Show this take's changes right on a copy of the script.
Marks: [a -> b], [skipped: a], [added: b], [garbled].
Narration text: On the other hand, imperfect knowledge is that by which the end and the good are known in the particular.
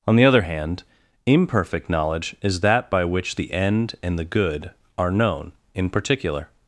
On the other hand, imperfect knowledge is that by which the end and the good are known in [skipped: the] particular.